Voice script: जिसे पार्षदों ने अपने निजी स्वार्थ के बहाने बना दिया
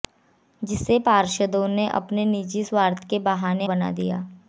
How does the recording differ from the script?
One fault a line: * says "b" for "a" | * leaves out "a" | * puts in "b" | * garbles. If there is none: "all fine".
all fine